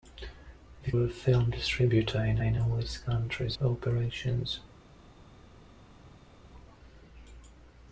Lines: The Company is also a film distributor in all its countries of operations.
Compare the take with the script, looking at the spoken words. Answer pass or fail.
fail